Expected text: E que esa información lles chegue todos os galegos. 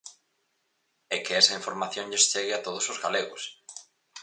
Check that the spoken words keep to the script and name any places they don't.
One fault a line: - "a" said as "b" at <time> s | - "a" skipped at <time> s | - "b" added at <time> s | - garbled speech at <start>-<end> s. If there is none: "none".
- "a" added at 2.5 s